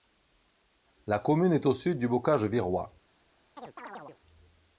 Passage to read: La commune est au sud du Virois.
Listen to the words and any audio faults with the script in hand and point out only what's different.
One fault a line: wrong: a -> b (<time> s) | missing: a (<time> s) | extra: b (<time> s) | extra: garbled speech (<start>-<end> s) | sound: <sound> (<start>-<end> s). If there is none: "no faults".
extra: Bocage (2.1 s)
sound: chirp (3.6-4.2 s)